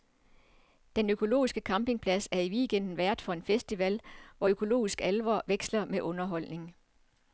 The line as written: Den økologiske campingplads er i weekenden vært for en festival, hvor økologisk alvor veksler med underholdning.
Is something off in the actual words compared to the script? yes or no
no